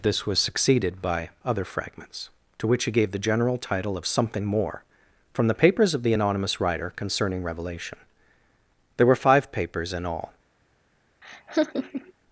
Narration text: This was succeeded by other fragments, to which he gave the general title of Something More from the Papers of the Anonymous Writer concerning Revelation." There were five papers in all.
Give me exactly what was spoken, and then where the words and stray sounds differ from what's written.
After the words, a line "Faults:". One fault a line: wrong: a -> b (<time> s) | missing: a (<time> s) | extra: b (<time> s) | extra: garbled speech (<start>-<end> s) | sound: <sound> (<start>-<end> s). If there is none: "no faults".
This was succeeded by other fragments, to which he gave the general title of Something More from the Papers of the Anonymous Writer concerning Revelation." There were five papers in all.
Faults:
sound: laugh (11.2-12.1 s)